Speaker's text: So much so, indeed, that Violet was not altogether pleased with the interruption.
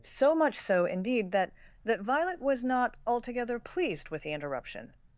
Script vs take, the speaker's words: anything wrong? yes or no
yes